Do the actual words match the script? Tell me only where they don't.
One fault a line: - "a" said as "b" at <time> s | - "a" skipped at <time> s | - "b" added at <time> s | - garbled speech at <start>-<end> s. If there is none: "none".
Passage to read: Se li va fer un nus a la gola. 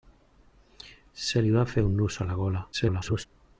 - garbled speech at 2.7-3.3 s